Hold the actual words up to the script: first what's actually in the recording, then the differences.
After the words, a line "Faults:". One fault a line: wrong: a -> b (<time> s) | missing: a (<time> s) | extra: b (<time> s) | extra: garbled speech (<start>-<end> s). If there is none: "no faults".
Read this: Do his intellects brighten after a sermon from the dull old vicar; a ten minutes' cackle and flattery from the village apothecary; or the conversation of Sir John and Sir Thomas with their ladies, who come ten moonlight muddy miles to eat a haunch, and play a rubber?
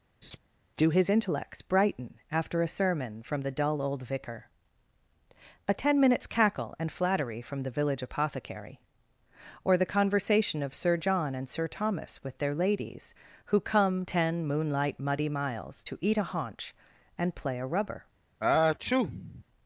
Do his intellects brighten after a sermon from the dull old vicar; a ten minutes' cackle and flattery from the village apothecary; or the conversation of Sir John and Sir Thomas with their ladies, who come ten moonlight muddy miles to eat a haunch, and play a rubber?
Faults:
no faults